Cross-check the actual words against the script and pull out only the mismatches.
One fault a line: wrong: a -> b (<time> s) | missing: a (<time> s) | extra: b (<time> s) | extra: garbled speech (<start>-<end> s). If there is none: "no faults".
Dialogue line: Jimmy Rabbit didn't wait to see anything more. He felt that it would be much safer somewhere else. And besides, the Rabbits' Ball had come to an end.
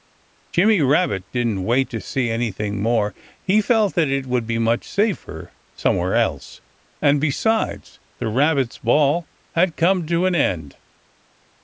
no faults